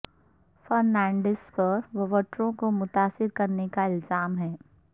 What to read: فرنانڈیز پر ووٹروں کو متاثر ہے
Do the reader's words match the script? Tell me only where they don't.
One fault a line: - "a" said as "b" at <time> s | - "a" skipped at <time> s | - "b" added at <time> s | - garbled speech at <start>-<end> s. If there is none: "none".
- "کرنے کا الزام" added at 3.3 s